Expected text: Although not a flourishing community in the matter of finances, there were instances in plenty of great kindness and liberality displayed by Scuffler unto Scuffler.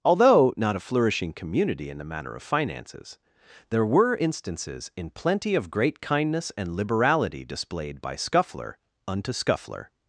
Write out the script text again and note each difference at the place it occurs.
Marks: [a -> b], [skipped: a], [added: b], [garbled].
Although not a flourishing community in the matter of finances, there were instances in plenty of great kindness and liberality displayed by Scuffler unto Scuffler.